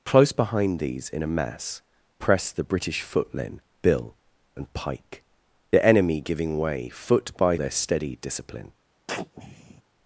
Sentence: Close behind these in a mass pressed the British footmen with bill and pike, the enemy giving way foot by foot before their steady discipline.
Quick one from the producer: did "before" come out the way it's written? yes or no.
no